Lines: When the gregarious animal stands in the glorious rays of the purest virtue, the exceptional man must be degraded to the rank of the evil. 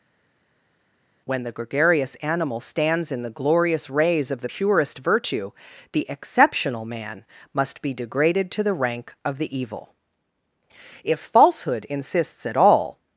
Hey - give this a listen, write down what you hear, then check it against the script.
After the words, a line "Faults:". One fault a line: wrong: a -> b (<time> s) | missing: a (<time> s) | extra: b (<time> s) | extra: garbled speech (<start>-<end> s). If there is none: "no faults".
When the gregarious animal stands in the glorious rays of the purest virtue, the exceptional man must be degraded to the rank of the evil. If falsehood insists at all
Faults:
extra: If falsehood insists at all (11.0 s)